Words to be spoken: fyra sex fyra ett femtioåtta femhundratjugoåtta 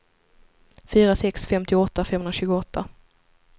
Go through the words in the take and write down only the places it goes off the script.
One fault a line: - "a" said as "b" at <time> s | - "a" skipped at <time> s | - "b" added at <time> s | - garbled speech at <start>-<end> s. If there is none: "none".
- "fyra ett" skipped at 1.5 s